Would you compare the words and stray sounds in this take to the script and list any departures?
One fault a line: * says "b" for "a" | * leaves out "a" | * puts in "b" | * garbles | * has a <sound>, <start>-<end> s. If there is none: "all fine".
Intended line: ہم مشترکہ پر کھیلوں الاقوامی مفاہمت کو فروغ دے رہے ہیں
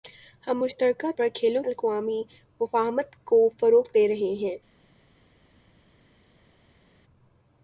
all fine